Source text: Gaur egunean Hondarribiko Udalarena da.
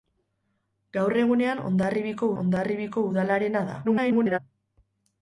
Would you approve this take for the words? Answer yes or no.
no